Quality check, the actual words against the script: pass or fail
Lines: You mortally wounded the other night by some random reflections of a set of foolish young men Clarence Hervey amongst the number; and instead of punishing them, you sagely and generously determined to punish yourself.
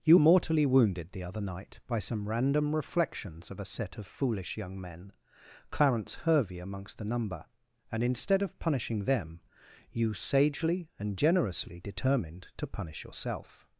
pass